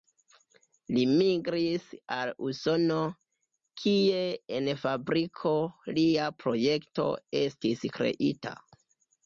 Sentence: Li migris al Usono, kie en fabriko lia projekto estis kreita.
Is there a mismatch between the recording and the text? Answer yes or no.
no